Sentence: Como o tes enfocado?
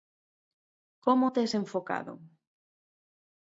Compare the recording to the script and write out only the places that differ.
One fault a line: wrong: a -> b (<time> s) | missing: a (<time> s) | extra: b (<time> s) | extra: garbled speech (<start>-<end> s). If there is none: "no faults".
no faults